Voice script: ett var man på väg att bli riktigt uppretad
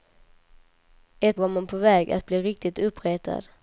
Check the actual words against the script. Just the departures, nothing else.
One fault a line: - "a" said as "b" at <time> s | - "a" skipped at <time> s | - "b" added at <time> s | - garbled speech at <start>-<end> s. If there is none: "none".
none